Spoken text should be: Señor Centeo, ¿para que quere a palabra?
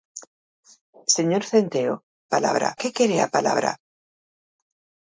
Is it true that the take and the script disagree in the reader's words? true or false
true